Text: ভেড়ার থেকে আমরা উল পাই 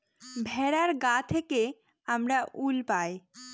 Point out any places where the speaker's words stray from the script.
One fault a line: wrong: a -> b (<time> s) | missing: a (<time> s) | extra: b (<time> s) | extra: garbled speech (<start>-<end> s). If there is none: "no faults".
extra: গা (1.0 s)